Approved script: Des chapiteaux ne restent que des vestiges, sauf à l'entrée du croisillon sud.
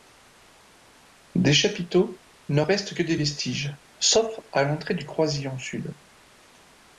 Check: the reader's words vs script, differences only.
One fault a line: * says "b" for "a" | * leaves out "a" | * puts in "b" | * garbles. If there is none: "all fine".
all fine